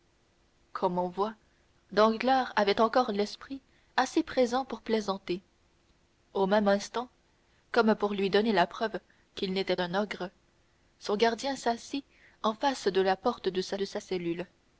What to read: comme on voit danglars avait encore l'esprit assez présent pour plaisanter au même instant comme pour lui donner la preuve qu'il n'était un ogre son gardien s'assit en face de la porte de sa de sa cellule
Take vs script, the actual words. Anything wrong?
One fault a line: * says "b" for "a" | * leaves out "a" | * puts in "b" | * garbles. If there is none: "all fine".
all fine